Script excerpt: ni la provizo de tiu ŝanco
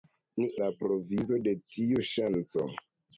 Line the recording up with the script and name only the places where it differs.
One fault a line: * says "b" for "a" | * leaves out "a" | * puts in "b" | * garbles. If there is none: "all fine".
all fine